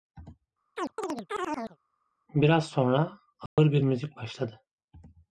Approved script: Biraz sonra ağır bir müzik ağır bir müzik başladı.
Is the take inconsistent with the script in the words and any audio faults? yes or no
yes